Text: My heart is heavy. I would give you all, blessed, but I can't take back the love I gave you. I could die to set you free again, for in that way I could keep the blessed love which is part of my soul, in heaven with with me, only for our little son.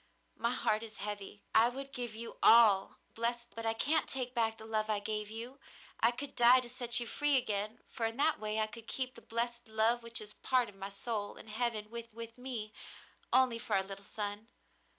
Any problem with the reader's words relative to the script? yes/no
no